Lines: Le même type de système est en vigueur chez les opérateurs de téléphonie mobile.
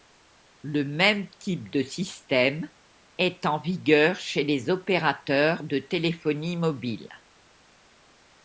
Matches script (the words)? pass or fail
pass